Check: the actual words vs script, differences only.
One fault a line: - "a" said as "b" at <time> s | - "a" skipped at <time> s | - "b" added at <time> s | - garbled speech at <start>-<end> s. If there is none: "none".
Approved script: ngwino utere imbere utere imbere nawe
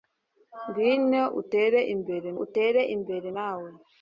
none